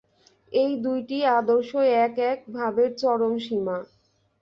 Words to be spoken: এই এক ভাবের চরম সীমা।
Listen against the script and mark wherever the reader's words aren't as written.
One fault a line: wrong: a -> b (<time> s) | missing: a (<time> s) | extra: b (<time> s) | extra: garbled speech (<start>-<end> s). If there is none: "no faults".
extra: দুইটি আদর্শই এক (0.8 s)